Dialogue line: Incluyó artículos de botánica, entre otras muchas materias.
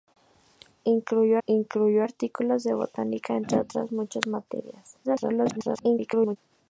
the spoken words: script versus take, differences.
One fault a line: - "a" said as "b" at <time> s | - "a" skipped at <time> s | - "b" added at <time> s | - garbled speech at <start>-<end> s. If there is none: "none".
- "incluyó" added at 1.5 s
- garbled speech at 5.0-6.4 s